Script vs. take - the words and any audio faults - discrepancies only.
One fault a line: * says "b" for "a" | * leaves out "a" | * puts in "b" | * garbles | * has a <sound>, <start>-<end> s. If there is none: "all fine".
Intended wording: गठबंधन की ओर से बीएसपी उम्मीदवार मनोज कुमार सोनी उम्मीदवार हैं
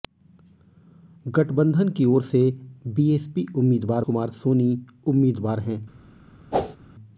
* leaves out "मनोज"
* has a whoosh, 6.5-6.8 s